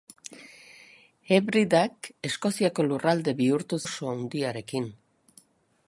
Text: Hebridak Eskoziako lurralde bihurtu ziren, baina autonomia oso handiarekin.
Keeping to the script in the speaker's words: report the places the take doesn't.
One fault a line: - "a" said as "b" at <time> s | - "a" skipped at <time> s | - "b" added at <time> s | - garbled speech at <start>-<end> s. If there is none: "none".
- "ziren baina autonomia" skipped at 3.8 s